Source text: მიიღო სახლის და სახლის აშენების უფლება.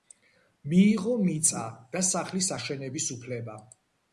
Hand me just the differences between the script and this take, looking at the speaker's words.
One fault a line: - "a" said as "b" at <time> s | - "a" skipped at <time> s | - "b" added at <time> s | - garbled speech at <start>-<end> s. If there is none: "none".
- "სახლის" said as "მიწა" at 1.3 s